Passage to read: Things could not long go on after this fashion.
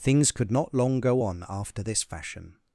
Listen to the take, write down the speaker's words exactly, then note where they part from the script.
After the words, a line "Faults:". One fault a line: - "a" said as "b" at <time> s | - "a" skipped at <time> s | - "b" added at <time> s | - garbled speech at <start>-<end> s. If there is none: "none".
Things could not long go on after this fashion.
Faults:
none